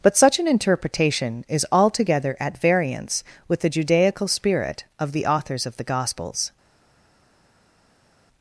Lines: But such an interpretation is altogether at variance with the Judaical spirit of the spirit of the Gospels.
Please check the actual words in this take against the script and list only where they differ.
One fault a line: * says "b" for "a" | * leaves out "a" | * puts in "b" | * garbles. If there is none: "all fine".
* says "authors" for "spirit"